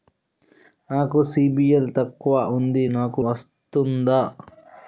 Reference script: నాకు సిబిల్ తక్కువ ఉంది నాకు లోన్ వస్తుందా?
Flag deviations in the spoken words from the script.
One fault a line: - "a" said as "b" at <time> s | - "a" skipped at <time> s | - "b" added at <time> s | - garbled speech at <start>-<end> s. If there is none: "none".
- "లోన్" skipped at 3.2 s